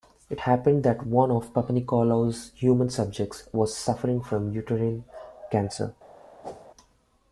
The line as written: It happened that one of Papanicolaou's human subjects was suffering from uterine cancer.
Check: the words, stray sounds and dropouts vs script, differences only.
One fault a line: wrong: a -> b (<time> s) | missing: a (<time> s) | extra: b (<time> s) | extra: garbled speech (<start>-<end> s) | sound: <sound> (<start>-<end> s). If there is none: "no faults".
sound: whoosh (6.4-6.7 s)